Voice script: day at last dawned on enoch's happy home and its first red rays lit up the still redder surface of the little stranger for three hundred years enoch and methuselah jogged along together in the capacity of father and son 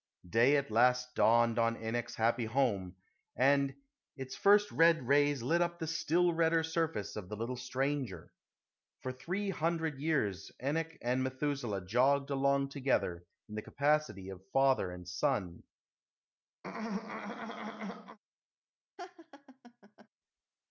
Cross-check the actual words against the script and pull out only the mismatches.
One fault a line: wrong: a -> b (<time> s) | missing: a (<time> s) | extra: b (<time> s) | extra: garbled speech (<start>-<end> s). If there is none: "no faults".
no faults